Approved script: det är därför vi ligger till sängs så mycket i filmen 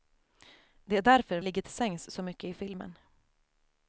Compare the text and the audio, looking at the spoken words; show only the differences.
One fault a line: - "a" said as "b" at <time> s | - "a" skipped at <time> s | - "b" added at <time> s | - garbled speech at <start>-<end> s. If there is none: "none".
- "vi" skipped at 1.4 s